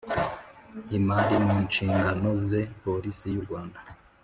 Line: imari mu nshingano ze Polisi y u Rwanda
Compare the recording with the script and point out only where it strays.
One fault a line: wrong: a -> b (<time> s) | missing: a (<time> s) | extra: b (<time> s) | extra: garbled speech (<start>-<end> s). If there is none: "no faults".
no faults